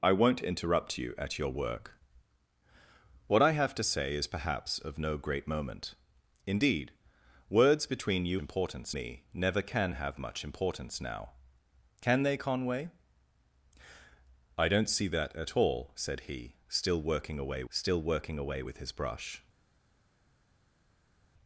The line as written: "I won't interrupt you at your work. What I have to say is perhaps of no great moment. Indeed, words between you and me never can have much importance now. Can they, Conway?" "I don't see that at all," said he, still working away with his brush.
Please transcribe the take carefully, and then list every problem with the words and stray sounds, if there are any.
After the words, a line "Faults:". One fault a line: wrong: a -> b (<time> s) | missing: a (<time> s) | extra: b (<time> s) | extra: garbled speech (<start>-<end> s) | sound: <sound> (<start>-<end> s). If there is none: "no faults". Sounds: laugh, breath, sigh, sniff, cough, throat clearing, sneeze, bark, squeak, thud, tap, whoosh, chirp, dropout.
"I won't interrupt you at your work. What I have to say is perhaps of no great moment. Indeed, words between you importance me never can have much importance now. Can they, Conway?" "I don't see that at all," said he, still working away still working away with his brush.
Faults:
wrong: and -> importance (8.4 s)
extra: still working away (17.7 s)